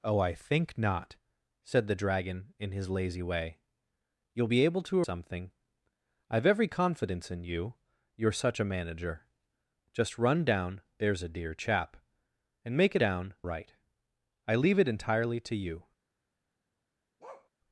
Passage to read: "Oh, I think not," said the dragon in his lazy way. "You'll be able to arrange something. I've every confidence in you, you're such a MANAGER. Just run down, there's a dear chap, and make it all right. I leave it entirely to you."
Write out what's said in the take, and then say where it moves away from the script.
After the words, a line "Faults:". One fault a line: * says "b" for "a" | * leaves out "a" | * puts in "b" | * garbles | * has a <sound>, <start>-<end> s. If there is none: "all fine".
"Oh, I think not," said the dragon in his lazy way. "You'll be able to something. I've every confidence in you, you're such a MANAGER. Just run down, there's a dear chap, and make it down right. I leave it entirely to you."
Faults:
* leaves out "arrange"
* says "down" for "all"
* has a bark, 17.2-17.5 s